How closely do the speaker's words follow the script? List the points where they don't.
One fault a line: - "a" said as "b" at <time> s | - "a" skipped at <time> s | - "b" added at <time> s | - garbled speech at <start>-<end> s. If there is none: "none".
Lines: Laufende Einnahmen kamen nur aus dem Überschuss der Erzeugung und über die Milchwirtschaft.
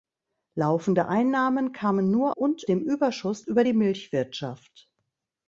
- "aus" said as "und" at 2.3 s
- "der Erzeugung und" skipped at 3.4 s